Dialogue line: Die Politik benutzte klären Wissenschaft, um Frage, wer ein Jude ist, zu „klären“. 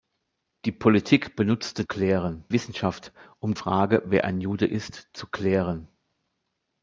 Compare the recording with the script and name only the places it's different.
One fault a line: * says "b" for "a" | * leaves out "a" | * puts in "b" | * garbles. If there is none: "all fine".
all fine